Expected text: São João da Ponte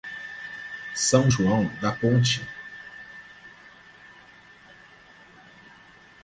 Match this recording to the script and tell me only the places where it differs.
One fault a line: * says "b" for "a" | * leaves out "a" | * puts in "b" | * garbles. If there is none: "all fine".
all fine